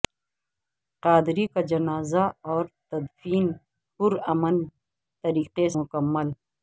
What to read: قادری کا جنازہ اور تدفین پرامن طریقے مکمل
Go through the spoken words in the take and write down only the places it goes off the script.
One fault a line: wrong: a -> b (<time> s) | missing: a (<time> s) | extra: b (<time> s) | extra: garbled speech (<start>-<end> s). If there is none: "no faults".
no faults